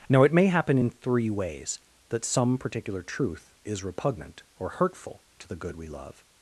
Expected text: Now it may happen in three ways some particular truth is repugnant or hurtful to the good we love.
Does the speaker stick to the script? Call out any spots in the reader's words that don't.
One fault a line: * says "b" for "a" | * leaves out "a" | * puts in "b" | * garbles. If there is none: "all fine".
* puts in "that"